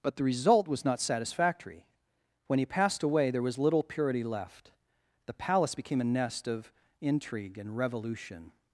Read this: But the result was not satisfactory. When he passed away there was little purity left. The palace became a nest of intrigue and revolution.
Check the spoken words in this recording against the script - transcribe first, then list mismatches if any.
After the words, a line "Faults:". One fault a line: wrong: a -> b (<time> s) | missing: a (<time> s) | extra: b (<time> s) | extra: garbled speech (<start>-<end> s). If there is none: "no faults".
But the result was not satisfactory. When he passed away there was little purity left. The palace became a nest of intrigue and revolution.
Faults:
no faults